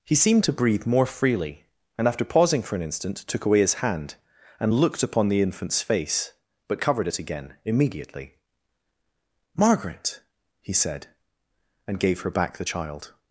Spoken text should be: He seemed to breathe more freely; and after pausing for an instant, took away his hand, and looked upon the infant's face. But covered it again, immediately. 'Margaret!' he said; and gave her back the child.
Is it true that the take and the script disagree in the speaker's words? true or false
false